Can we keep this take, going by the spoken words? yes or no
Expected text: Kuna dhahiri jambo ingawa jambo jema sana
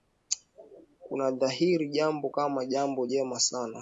no